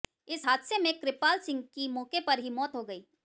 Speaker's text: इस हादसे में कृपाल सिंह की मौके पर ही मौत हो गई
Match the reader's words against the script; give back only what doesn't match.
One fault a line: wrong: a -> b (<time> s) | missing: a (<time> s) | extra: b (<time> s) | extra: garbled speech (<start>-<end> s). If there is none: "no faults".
no faults